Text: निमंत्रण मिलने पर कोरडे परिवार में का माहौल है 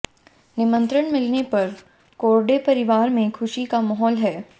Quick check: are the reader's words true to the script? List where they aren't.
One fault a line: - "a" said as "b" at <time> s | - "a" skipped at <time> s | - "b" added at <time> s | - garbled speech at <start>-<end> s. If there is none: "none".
- "खुशी" added at 3.3 s